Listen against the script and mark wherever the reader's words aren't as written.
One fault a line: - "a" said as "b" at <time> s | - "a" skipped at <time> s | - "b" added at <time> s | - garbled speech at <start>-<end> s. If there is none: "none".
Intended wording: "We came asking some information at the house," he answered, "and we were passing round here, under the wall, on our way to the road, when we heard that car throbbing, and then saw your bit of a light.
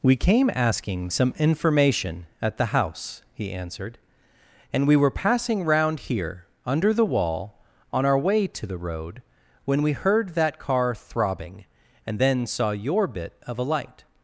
none